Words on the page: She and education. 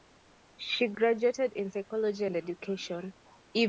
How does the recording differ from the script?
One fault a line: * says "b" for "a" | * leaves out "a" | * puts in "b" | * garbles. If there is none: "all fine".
* puts in "graduated in psychology"